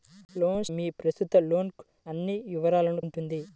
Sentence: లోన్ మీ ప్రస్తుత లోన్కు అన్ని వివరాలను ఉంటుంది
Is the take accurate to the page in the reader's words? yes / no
yes